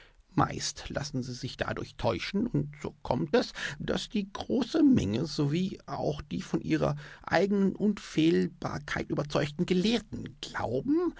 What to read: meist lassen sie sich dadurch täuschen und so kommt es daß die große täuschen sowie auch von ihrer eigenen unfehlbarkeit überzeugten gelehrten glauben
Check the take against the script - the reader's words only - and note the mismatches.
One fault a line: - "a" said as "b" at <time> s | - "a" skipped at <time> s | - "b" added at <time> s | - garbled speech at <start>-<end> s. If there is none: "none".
- "täuschen" said as "menge" at 4.8 s
- "die" added at 6.2 s